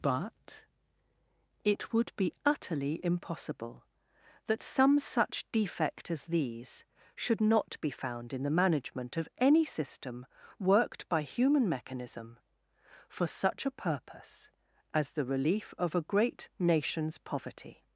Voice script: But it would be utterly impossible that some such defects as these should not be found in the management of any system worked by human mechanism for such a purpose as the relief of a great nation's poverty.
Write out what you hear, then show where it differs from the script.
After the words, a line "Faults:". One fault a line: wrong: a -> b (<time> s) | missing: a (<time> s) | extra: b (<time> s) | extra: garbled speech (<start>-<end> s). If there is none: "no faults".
But it would be utterly impossible that some such defect as these should not be found in the management of any system worked by human mechanism for such a purpose as the relief of a great nation's poverty.
Faults:
wrong: defects -> defect (5.5 s)